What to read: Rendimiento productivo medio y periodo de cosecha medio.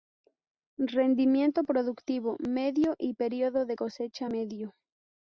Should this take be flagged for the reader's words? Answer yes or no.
no